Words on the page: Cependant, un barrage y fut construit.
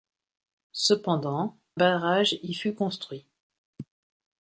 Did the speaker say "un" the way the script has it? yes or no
no